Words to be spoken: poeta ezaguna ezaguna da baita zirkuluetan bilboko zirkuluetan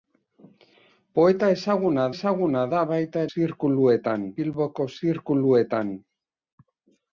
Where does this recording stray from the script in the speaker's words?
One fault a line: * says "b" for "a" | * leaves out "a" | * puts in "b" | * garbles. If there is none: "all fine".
all fine